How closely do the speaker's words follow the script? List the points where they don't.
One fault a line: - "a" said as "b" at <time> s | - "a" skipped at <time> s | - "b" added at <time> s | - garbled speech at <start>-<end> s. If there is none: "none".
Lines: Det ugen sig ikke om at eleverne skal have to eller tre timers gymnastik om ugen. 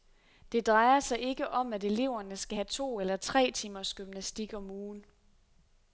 - "ugen" said as "drejer" at 0.7 s